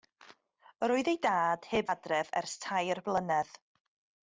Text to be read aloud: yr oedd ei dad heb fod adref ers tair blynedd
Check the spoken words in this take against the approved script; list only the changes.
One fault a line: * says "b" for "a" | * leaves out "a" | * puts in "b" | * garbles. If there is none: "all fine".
* leaves out "fod"